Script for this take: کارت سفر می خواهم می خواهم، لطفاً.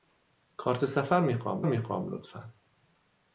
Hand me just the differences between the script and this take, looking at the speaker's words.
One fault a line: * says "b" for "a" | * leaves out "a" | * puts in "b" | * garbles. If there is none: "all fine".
all fine